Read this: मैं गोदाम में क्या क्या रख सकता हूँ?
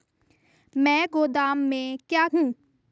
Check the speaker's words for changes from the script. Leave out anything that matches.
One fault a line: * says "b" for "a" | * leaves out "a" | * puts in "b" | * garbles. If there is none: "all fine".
* leaves out "क्या रख सकता"